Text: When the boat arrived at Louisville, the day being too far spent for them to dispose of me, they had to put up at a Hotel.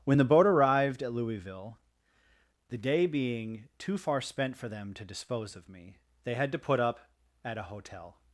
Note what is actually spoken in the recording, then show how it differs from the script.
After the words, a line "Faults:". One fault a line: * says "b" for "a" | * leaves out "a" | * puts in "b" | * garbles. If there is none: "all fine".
When the boat arrived at Louisville, the day being too far spent for them to dispose of me, they had to put up at a Hotel.
Faults:
all fine